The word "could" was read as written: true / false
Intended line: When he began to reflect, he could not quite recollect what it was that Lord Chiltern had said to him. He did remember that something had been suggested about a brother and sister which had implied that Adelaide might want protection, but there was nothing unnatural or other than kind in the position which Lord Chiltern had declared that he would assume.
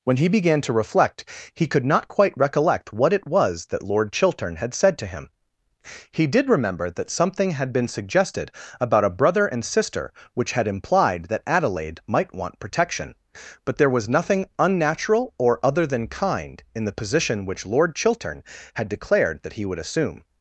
true